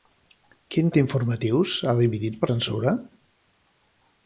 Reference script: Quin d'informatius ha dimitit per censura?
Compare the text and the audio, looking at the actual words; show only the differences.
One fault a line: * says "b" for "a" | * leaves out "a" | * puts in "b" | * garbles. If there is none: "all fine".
all fine